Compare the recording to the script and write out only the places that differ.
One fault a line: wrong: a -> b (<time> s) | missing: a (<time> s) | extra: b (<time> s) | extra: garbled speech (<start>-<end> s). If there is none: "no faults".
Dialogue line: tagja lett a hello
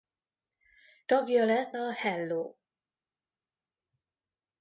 no faults